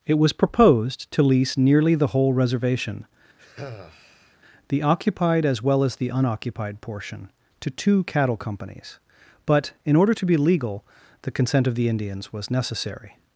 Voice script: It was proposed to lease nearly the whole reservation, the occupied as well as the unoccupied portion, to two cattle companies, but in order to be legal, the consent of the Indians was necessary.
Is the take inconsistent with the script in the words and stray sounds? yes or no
yes